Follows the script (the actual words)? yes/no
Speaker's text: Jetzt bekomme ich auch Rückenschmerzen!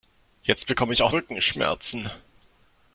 yes